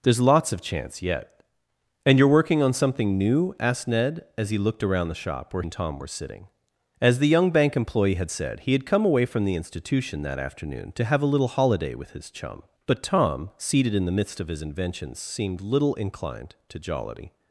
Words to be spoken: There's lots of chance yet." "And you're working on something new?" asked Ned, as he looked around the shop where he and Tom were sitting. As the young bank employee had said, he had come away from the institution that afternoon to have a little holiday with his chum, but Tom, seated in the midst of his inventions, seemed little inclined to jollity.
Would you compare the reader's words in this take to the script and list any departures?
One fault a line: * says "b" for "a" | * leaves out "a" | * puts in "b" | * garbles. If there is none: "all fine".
* leaves out "he"